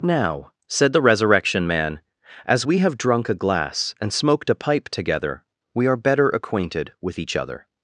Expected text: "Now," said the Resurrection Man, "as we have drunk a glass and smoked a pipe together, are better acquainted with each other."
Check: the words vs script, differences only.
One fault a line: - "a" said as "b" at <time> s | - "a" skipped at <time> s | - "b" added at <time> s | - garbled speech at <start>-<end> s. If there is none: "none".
- "we" added at 5.7 s